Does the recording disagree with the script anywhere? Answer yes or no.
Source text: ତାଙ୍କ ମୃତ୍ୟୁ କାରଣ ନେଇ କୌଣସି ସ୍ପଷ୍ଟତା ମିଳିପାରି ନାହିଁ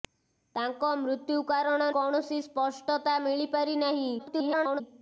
yes